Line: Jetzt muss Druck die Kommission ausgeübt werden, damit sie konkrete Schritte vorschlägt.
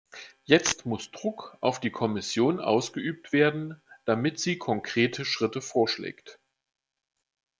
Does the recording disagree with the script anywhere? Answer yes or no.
yes